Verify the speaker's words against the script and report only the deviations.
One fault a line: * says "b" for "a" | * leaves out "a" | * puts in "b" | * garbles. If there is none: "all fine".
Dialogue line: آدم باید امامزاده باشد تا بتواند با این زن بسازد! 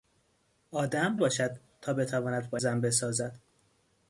* leaves out "باید امامزاده"
* leaves out "این"